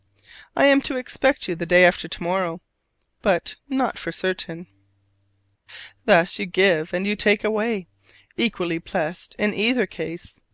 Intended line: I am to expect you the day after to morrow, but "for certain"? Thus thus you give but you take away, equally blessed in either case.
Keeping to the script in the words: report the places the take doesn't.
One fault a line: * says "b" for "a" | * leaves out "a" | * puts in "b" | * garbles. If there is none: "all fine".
* puts in "not"
* leaves out "thus"
* says "and" for "but"